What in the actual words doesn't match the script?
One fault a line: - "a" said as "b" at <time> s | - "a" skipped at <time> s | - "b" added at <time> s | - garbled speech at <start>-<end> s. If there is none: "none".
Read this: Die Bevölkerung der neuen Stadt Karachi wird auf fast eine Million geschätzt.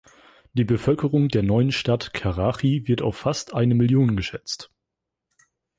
none